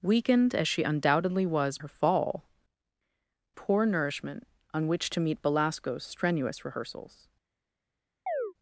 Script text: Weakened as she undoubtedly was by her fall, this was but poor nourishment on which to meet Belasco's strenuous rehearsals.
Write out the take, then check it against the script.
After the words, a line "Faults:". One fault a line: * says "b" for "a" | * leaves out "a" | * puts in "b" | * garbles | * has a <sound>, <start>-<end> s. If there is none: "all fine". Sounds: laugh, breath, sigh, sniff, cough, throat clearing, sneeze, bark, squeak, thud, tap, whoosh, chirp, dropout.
Weakened as she undoubtedly was her fall, poor nourishment on which to meet Belasco's strenuous rehearsals.
Faults:
* leaves out "by"
* leaves out "this was but"
* has a chirp, 8.3-8.5 s